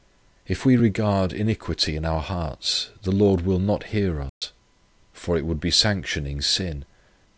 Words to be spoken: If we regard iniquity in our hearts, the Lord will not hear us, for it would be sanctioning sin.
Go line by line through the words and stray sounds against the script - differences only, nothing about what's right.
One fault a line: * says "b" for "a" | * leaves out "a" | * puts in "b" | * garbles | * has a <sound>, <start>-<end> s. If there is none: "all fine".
* has a dropout, 4.3-4.4 s